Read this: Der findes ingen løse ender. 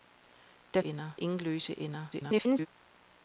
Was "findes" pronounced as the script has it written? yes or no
no